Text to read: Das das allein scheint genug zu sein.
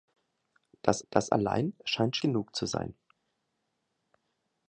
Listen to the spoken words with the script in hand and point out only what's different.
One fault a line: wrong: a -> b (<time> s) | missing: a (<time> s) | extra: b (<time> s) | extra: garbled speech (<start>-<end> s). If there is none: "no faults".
no faults